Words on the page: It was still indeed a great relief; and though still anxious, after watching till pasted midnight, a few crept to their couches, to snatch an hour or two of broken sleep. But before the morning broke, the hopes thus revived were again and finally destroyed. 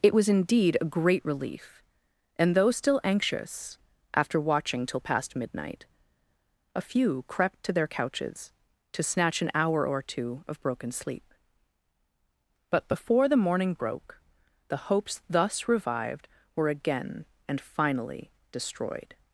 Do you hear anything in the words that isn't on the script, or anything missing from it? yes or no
yes